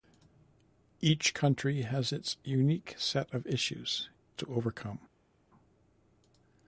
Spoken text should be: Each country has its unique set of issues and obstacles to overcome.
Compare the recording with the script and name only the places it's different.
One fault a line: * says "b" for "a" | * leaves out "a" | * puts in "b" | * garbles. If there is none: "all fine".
* leaves out "and obstacles"